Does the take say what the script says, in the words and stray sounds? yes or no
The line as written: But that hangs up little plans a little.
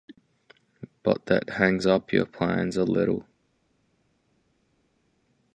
no